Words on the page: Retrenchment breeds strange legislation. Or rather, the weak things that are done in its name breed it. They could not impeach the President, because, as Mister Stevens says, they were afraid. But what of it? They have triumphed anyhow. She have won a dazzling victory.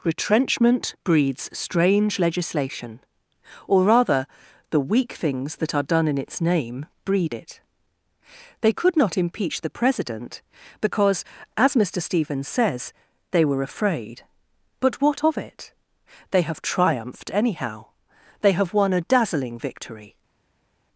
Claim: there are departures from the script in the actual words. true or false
true